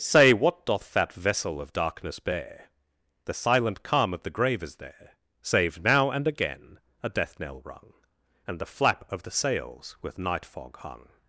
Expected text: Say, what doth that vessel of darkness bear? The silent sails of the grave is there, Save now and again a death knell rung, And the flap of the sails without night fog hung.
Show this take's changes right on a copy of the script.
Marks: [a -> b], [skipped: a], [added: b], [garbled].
Say, what doth that vessel of darkness bear? The silent [sails -> calm] of the grave is there, Save now and again a death knell rung, And the flap of the sails [without -> with] night fog hung.